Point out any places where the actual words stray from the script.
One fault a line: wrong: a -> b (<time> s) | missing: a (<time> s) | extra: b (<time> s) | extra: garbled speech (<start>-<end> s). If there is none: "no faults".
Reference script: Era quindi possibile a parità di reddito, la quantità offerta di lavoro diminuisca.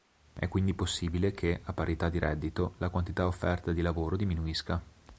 wrong: Era -> È (0.3 s)
extra: che (1.4 s)